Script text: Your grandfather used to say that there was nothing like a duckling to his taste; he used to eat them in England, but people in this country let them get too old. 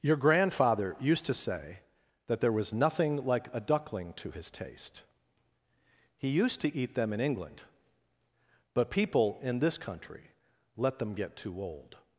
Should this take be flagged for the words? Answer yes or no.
no